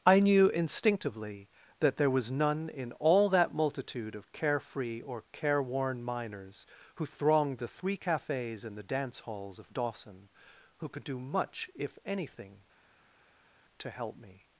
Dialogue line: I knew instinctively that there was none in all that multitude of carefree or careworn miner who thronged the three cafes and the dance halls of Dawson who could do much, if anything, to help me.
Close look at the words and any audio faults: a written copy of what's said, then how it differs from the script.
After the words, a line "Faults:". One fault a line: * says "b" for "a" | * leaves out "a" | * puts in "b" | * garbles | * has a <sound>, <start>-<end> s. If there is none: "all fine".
I knew instinctively that there was none in all that multitude of carefree or careworn miners who thronged the three cafes and the dance halls of Dawson who could do much, if anything, to help me.
Faults:
* says "miners" for "miner"